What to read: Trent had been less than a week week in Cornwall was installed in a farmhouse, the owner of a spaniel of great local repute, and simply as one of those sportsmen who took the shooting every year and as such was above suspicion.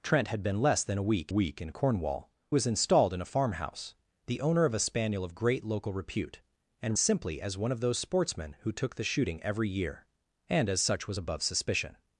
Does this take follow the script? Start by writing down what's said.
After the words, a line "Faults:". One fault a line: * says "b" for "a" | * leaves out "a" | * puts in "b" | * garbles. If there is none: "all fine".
Trent had been less than a week week in Cornwall was installed in a farmhouse, the owner of a spaniel of great local repute, and simply as one of those sportsmen who took the shooting every year and as such was above suspicion.
Faults:
all fine